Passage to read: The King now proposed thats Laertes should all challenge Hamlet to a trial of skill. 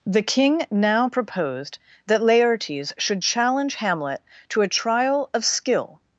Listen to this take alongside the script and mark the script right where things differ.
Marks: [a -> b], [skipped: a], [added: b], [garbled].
The King now proposed [thats -> that] Laertes should [skipped: all] challenge Hamlet to a trial of skill.